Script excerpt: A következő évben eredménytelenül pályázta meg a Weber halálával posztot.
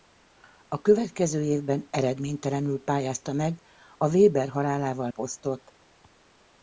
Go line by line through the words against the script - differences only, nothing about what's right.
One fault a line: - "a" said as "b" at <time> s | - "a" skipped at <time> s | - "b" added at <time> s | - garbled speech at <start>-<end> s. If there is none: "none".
none